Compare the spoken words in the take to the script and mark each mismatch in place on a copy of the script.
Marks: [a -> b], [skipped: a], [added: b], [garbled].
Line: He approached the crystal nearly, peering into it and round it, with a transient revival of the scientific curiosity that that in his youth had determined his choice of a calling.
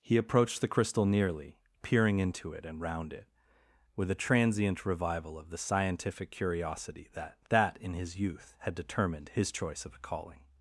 He approached the crystal nearly, peering into it and round it, with a transient revival of the scientific curiosity that that in his youth had determined his choice of a calling.